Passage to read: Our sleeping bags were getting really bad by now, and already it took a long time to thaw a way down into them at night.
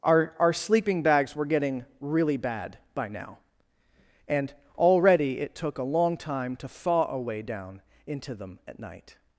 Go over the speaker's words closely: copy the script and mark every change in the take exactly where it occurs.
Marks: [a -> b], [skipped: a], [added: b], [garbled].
Our [added: our] sleeping bags were getting really bad by now, and already it took a long time to thaw a way down into them at night.